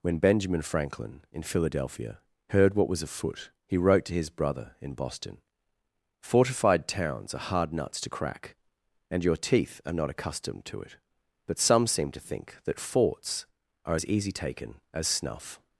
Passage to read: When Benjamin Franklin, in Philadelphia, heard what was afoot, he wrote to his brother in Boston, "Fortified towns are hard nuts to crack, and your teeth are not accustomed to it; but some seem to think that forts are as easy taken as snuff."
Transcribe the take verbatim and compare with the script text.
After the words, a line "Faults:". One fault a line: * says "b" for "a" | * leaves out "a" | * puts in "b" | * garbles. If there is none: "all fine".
When Benjamin Franklin, in Philadelphia, heard what was afoot, he wrote to his brother in Boston, "Fortified towns are hard nuts to crack, and your teeth are not accustomed to it; but some seem to think that forts are as easy taken as snuff."
Faults:
all fine